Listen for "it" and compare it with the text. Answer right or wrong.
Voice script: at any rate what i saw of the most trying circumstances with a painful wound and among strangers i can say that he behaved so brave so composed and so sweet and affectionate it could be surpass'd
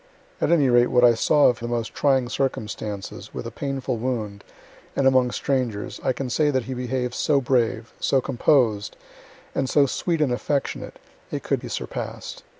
right